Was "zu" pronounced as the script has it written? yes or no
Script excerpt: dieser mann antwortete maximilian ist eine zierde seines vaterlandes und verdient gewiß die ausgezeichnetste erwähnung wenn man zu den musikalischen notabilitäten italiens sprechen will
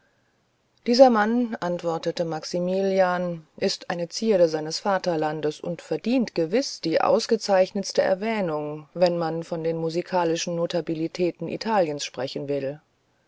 no